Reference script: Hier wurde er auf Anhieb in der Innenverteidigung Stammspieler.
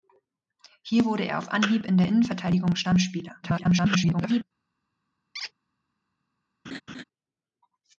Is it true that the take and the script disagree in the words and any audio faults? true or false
true